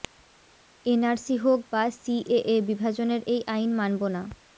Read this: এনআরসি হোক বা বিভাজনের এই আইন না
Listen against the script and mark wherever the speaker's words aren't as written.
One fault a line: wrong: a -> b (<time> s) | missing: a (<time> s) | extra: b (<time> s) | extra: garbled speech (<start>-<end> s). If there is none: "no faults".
extra: সিএএ (1.9 s)
extra: মানব (3.8 s)